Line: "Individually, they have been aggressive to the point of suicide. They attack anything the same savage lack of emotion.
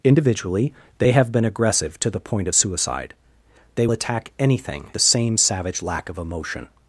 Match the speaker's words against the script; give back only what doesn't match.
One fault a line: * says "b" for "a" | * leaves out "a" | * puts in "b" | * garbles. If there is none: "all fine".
all fine